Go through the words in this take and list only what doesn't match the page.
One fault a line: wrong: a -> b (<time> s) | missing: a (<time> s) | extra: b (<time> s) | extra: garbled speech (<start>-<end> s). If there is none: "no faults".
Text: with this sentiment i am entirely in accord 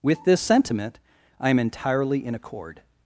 no faults